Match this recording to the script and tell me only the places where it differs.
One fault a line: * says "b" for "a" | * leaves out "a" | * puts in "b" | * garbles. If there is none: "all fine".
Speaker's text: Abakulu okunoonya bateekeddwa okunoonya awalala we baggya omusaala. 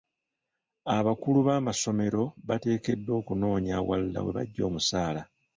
* says "b'amasomero" for "okunoonya"